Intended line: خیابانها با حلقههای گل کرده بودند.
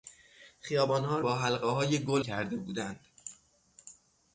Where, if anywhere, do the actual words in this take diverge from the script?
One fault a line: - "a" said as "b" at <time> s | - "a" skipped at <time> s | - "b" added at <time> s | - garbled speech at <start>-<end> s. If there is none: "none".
none